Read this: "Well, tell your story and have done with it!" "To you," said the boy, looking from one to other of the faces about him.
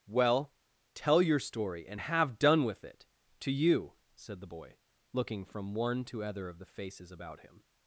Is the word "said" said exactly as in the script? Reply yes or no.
yes